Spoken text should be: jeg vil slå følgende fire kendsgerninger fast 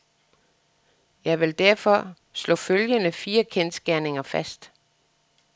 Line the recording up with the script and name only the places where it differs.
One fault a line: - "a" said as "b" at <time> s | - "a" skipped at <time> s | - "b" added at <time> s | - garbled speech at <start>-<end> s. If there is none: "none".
- "derfor" added at 1.6 s